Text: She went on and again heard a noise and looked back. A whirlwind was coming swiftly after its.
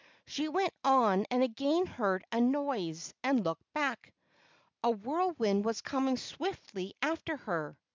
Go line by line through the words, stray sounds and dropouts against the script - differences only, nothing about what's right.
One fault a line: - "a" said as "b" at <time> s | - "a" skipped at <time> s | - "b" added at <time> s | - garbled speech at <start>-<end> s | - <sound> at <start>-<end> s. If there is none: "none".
- "its" said as "her" at 7.4 s